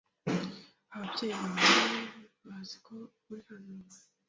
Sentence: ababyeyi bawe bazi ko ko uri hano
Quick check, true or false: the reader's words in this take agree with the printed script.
false